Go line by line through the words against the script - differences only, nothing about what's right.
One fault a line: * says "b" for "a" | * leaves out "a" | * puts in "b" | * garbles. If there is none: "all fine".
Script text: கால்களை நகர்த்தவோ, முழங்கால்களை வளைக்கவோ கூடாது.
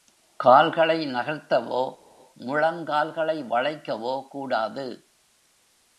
all fine